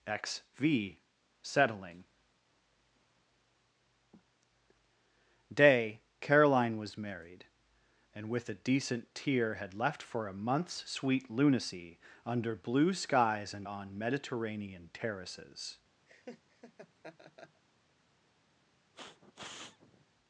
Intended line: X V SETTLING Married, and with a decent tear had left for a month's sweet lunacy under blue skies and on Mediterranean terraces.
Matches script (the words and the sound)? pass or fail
fail